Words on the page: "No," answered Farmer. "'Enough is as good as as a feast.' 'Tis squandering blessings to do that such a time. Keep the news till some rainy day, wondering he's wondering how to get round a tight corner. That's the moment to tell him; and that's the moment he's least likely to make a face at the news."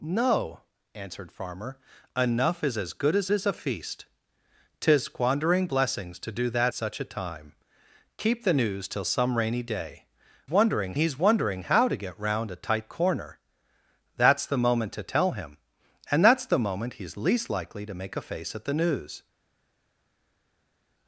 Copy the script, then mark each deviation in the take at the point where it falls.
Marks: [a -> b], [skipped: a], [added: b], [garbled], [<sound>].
"No," answered Farmer. "'Enough is as good as as a feast.' 'Tis squandering blessings to do that such a time. Keep the news till some rainy day, wondering he's wondering how to get round a tight corner. That's the moment to tell him; and that's the moment he's least likely to make a face at the news."